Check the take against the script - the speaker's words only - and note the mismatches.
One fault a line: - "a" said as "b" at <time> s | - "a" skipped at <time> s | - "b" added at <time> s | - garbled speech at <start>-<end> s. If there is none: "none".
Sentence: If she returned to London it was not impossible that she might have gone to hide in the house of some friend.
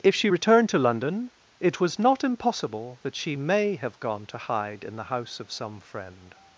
- "might" said as "may" at 3.3 s